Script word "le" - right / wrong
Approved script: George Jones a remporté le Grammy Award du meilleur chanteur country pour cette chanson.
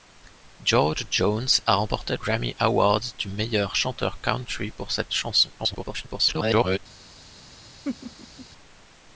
wrong